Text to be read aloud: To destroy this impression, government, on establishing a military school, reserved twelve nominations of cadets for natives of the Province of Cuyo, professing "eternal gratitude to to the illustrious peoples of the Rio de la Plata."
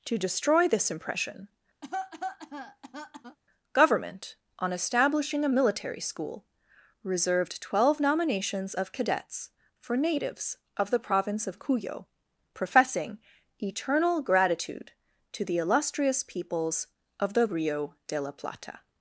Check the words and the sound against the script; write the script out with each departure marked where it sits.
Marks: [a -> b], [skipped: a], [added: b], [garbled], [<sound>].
To destroy this impression, [cough] government, on establishing a military school, reserved twelve nominations of cadets for natives of the Province of Cuyo, professing "eternal gratitude to [skipped: to] the illustrious peoples of the Rio de la Plata."